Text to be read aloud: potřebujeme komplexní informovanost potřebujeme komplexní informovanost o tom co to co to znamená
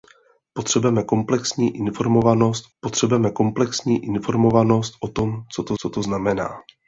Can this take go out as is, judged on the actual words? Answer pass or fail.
pass